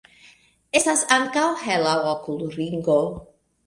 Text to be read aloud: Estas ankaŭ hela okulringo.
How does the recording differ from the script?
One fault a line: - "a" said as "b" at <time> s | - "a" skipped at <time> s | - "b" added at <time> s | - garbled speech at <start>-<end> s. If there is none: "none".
none